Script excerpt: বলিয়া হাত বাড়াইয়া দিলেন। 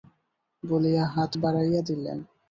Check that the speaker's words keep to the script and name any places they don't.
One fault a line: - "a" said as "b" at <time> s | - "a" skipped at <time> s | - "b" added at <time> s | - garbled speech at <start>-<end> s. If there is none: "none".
none